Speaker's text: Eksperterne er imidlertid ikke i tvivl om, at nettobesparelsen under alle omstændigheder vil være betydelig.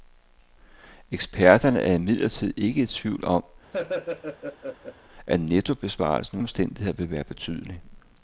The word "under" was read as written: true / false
false